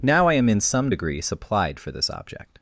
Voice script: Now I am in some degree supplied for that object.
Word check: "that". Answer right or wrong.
wrong